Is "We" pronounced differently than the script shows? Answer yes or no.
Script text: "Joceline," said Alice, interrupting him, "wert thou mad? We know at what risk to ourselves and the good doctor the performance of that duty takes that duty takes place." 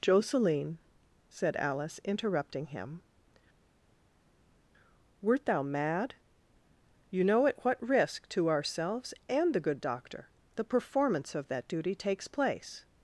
yes